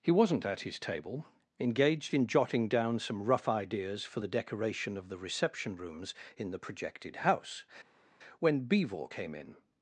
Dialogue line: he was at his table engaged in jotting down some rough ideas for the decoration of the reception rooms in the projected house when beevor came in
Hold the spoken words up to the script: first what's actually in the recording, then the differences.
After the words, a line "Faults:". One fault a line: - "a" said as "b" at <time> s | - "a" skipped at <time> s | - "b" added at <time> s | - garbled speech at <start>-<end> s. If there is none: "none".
he wasn't at his table engaged in jotting down some rough ideas for the decoration of the reception rooms in the projected house when beevor came in
Faults:
- "was" said as "wasn't" at 0.1 s